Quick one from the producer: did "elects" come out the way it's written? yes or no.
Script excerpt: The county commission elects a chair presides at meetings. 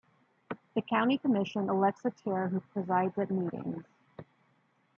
yes